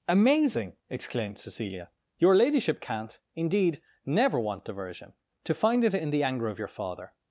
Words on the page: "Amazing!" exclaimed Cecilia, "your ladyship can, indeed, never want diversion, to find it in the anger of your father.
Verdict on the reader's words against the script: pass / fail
fail